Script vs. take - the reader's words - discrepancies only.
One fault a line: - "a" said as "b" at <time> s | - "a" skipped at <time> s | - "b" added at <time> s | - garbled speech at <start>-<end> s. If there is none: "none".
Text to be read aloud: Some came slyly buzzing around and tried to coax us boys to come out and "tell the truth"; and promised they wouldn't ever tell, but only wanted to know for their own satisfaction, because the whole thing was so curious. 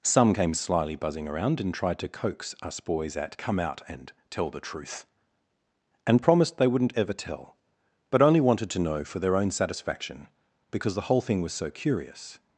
- "to" said as "at" at 3.2 s